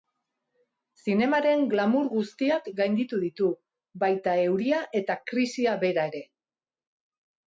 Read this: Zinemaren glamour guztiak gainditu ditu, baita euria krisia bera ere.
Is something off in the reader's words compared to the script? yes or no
yes